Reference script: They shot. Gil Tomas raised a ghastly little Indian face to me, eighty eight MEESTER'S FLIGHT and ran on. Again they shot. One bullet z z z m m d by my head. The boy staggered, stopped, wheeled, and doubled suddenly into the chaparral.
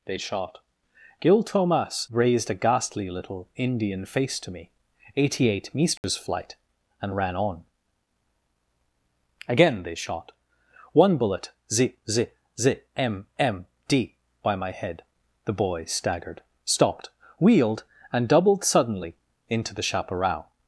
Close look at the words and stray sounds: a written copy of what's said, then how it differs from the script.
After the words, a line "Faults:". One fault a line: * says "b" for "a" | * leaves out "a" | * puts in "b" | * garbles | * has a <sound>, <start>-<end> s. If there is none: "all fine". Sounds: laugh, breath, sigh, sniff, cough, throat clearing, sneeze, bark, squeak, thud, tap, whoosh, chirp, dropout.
They shot. Gil Tomas raised a ghastly little Indian face to me, eighty eight MEESTER'S FLIGHT and ran on. Again they shot. One bullet z z z m m d by my head. The boy staggered, stopped, wheeled, and doubled suddenly into the chaparral.
Faults:
* has a dropout, 6.0-6.0 s